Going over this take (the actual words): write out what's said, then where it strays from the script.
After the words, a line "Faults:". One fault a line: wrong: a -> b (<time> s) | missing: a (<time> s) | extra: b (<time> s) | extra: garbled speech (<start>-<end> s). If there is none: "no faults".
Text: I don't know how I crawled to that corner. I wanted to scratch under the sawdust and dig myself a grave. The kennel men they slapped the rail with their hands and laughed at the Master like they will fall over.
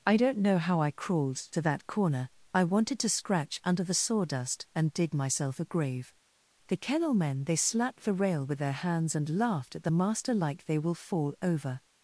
I don't know how I crawled to that corner. I wanted to scratch under the sawdust and dig myself a grave. The kennel men they slapped the rail with their hands and laughed at the Master like they will fall over.
Faults:
no faults